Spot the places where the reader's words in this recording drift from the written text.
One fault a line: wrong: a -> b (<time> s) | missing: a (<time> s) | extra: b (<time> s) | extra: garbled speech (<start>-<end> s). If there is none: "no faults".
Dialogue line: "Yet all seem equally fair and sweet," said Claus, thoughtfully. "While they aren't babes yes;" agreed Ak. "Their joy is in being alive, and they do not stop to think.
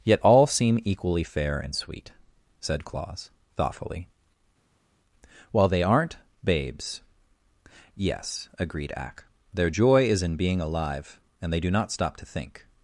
no faults